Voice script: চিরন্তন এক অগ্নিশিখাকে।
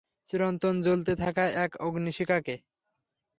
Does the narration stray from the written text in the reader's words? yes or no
yes